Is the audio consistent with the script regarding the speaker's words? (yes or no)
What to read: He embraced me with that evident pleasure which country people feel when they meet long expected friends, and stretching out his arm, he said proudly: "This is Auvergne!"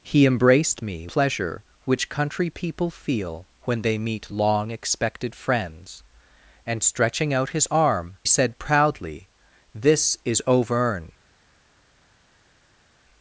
no